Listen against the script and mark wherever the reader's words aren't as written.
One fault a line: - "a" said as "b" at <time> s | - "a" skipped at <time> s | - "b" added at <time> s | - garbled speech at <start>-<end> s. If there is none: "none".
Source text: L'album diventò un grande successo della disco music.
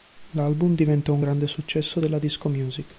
none